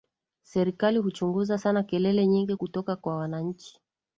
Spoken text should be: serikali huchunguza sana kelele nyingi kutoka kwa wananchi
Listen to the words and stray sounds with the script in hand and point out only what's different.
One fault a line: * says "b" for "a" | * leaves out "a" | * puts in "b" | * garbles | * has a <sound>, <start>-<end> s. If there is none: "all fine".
all fine